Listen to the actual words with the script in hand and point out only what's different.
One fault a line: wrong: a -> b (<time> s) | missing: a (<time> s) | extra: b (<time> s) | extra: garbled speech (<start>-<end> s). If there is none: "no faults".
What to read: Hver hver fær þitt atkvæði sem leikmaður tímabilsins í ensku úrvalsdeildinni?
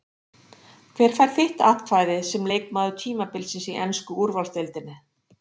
missing: hver (1.1 s)